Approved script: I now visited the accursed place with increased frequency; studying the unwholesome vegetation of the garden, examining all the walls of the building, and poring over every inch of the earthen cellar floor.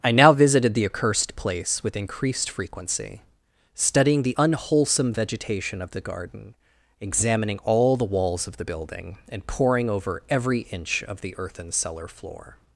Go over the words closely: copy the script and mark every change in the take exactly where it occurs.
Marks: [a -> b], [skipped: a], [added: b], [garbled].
I now visited the accursed place with increased frequency; studying the unwholesome vegetation of the garden, examining all the walls of the building, and poring over every inch of the earthen cellar floor.